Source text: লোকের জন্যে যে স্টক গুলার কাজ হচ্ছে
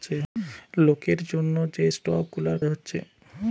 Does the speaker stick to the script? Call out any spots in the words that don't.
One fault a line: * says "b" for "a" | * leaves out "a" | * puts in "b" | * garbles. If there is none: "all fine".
* leaves out "কাজ"